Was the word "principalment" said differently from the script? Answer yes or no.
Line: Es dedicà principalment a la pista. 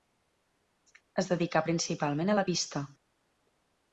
no